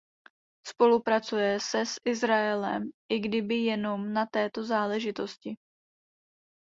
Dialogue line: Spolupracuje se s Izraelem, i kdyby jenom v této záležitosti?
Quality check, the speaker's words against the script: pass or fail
fail